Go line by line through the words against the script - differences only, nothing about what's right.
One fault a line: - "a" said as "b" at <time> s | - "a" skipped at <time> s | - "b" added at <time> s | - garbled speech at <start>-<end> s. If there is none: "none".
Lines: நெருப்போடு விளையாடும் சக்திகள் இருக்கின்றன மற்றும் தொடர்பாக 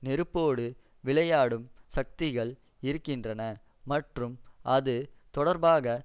- "அது" added at 4.7 s